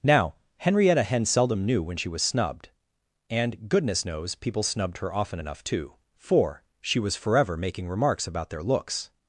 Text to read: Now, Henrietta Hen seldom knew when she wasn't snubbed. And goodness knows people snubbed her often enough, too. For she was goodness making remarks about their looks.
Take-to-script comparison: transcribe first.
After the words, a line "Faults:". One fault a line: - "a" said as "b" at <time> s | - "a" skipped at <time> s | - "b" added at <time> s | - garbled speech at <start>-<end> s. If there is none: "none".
Now, Henrietta Hen seldom knew when she was snubbed. And goodness knows people snubbed her often enough, too. For she was forever making remarks about their looks.
Faults:
- "wasn't" said as "was" at 2.1 s
- "goodness" said as "forever" at 7.2 s